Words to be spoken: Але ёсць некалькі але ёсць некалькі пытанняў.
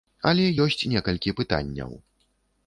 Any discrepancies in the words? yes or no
yes